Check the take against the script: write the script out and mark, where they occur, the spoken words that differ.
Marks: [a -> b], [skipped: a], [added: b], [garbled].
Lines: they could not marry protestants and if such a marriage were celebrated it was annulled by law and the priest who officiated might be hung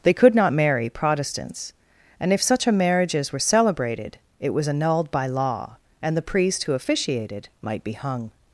they could not marry protestants and if such a [marriage -> marriages] were celebrated it was annulled by law and the priest who officiated might be hung